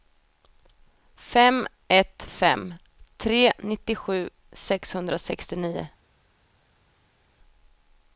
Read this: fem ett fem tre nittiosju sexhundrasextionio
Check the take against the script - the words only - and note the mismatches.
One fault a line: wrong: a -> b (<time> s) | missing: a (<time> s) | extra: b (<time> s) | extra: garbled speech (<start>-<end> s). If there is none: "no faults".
no faults